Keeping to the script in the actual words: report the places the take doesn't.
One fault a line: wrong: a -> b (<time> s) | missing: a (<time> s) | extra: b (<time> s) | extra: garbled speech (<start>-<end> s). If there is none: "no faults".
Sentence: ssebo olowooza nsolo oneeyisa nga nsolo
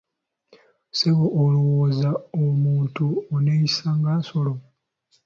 wrong: nsolo -> omuntu (2.4 s)